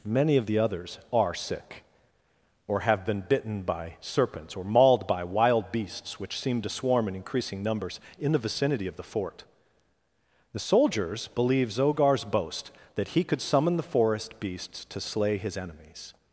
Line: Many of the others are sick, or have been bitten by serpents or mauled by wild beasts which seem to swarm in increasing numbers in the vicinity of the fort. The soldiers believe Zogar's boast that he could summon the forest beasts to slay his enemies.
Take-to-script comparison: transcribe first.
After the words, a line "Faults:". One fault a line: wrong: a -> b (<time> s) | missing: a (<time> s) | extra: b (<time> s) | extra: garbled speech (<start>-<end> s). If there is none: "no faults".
Many of the others are sick, or have been bitten by serpents or mauled by wild beasts which seem to swarm in increasing numbers in the vicinity of the fort. The soldiers believe Zogar's boast that he could summon the forest beasts to slay his enemies.
Faults:
no faults